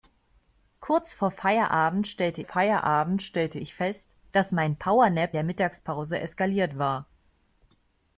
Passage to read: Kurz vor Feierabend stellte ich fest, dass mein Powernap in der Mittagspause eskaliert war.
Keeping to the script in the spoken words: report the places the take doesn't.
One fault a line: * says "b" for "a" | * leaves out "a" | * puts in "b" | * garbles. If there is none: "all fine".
* puts in "Feierabend stellte"
* leaves out "in"